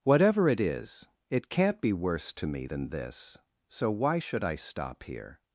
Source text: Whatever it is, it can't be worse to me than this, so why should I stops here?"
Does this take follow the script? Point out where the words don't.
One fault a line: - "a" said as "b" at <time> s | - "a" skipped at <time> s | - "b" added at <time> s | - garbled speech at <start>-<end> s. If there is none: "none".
- "stops" said as "stop" at 4.6 s